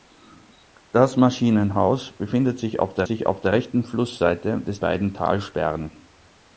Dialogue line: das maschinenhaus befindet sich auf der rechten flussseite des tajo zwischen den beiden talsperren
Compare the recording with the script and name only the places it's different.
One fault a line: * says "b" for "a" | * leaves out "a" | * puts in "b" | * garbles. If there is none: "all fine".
* puts in "sich auf der"
* leaves out "tajo zwischen den"